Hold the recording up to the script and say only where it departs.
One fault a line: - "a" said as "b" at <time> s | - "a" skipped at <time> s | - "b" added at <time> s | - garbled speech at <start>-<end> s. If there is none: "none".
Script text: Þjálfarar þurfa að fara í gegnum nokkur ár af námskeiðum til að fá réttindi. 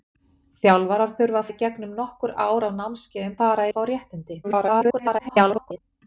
- "fara" skipped at 1.5 s
- "til" said as "fara" at 3.4 s
- garbled speech at 4.4-5.8 s